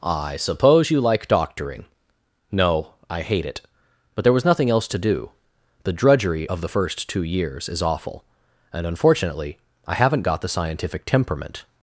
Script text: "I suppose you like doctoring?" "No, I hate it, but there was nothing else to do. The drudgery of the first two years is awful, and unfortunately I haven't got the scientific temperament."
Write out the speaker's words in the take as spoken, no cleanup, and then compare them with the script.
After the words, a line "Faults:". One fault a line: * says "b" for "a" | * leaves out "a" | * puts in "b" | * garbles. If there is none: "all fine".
"I suppose you like doctoring?" "No, I hate it, but there was nothing else to do. The drudgery of the first two years is awful, and unfortunately I haven't got the scientific temperament."
Faults:
all fine